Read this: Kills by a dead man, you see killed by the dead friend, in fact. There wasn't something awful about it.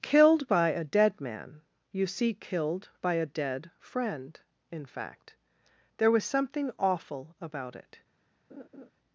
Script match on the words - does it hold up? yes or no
no